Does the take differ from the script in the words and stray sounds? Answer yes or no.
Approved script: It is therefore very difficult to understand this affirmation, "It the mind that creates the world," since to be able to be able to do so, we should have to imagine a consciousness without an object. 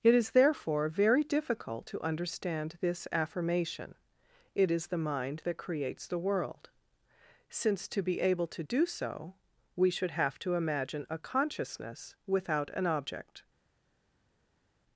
yes